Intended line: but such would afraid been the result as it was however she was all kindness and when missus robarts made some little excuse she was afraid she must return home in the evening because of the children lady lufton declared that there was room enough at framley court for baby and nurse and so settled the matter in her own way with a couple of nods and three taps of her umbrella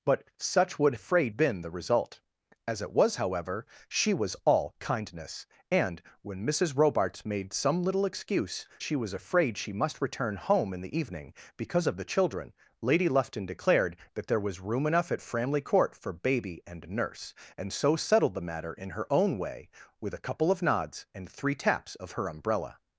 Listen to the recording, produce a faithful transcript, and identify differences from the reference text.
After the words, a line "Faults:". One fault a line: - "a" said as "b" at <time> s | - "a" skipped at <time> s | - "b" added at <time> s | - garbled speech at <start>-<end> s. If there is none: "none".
but such would afraid been the result as it was however she was all kindness and when missus robarts made some little excuse she was afraid she must return home in the evening because of the children lady lufton declared that there was room enough at framley court for baby and nurse and so settled the matter in her own way with a couple of nods and three taps of her umbrella
Faults:
none